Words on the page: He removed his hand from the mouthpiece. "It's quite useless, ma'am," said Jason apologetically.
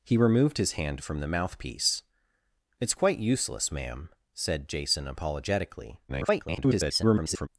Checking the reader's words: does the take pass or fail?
fail